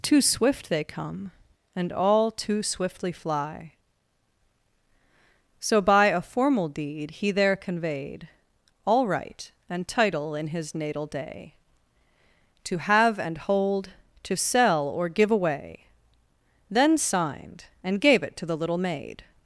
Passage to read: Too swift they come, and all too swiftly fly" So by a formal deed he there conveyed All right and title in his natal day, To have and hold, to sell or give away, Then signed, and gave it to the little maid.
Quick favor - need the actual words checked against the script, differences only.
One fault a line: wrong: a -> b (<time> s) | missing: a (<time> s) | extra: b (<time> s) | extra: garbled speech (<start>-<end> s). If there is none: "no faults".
no faults